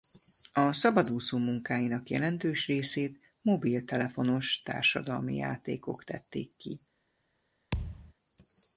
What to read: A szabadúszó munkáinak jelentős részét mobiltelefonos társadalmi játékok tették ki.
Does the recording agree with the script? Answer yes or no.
yes